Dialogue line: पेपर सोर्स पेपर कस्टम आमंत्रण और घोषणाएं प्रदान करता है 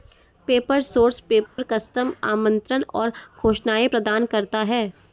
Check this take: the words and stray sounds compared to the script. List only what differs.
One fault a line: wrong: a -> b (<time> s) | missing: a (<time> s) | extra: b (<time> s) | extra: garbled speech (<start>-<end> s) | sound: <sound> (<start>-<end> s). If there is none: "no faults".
sound: dropout (1.5-1.6 s)